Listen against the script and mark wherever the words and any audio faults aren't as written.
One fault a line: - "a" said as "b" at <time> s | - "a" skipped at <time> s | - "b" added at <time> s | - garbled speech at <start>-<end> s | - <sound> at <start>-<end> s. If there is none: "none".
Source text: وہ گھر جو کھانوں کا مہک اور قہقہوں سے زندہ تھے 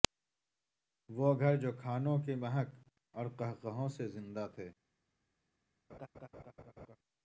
- "کا" said as "کی" at 2.2 s
- laugh at 5.9-7.0 s